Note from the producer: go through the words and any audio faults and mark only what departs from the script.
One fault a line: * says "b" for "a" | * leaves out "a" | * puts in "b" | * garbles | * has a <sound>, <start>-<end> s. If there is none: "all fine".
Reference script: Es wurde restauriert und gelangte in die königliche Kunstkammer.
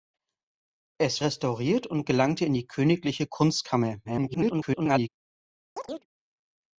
* leaves out "wurde"
* garbles
* has a chirp, 5.8-6.1 s